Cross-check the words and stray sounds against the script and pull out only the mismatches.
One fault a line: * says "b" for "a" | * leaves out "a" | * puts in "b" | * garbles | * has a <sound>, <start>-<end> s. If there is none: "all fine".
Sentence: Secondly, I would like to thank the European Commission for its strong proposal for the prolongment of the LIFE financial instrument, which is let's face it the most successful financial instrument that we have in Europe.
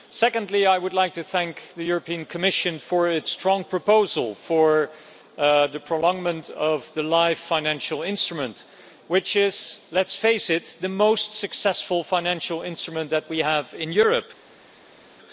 all fine